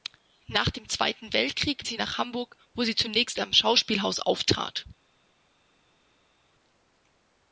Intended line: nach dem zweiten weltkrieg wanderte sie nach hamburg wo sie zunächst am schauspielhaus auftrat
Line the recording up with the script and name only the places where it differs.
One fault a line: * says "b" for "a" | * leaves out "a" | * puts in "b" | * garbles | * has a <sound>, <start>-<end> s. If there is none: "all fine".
* leaves out "wanderte"